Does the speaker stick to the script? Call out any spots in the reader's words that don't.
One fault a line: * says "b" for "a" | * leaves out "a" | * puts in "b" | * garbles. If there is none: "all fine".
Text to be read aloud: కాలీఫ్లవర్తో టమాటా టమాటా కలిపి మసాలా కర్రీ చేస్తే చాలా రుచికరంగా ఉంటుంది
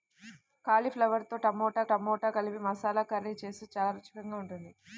all fine